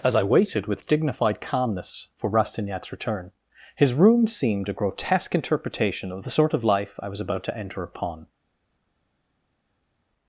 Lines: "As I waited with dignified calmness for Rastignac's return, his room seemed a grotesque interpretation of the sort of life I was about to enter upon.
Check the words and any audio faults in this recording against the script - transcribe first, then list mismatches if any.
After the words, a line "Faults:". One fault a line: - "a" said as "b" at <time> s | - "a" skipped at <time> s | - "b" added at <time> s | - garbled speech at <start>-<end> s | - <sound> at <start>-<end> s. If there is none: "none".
"As I waited with dignified calmness for Rastignac's return, his room seemed a grotesque interpretation of the sort of life I was about to enter upon.
Faults:
none